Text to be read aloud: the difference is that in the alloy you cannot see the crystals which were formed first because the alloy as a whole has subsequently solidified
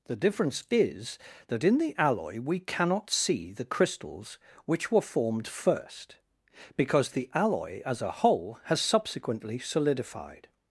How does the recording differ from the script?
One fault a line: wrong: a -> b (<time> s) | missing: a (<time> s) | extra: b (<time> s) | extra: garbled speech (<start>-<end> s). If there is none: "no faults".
wrong: you -> we (2.4 s)